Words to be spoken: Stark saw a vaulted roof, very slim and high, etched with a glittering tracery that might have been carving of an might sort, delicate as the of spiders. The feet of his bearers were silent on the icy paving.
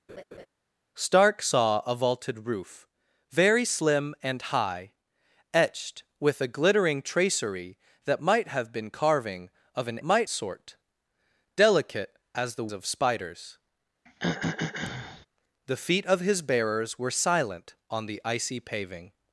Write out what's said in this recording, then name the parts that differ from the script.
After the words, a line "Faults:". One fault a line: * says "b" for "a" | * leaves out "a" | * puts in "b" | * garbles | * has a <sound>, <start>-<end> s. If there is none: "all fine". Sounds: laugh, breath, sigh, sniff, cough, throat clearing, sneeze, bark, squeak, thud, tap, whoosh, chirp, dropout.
Stark saw a vaulted roof, very slim and high, etched with a glittering tracery that might have been carving of an might sort, delicate as the of spiders. The feet of his bearers were silent on the icy paving.
Faults:
* has a laugh, 0.1-0.5 s
* has a throat clearing, 14.1-15.3 s